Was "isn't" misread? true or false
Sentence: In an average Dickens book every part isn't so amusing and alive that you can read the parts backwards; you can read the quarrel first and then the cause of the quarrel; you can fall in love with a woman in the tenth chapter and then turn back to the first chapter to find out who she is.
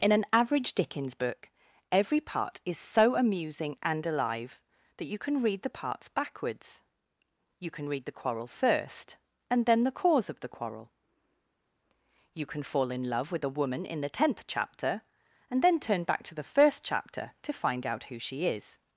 true